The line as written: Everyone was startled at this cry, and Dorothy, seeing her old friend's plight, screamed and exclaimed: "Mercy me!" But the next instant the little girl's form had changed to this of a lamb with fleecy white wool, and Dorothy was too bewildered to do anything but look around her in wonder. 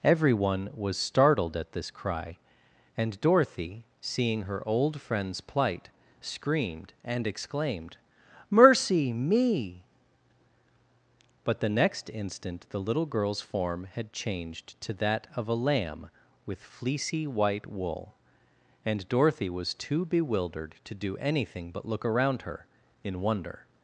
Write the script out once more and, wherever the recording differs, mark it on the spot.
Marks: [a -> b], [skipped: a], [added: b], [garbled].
Everyone was startled at this cry, and Dorothy, seeing her old friend's plight, screamed and exclaimed: "Mercy me!" But the next instant the little girl's form had changed to [this -> that] of a lamb with fleecy white wool, and Dorothy was too bewildered to do anything but look around her in wonder.